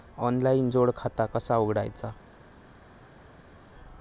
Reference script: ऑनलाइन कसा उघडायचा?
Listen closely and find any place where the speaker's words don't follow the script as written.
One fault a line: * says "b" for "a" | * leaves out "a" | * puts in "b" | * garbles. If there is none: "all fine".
* puts in "जोड खाता"